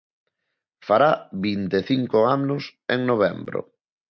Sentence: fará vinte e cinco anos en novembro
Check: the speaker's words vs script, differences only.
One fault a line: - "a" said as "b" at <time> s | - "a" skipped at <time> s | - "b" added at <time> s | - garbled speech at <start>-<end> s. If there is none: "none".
none